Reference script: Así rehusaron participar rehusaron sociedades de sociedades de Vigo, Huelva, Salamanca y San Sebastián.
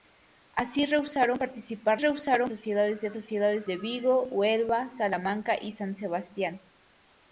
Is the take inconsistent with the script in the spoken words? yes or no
no